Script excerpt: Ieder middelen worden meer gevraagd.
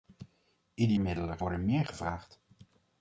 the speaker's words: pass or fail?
pass